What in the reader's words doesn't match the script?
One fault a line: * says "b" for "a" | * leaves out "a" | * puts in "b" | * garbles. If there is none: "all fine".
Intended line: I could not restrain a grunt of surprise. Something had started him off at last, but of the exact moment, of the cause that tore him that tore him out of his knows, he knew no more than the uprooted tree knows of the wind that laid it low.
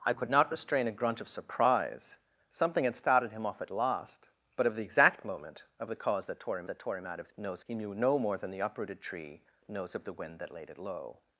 all fine